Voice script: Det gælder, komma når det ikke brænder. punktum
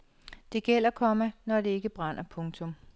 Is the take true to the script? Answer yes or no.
yes